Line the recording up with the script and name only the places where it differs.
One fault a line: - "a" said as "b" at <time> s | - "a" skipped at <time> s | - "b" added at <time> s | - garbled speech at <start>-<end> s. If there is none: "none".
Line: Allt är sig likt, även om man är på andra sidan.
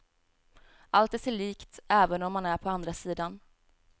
none